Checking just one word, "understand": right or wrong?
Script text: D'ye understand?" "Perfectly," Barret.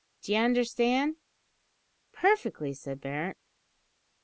right